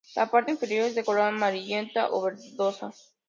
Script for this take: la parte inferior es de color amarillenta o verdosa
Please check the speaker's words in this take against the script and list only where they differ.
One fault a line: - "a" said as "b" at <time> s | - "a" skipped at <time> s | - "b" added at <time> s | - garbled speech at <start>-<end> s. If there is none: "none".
none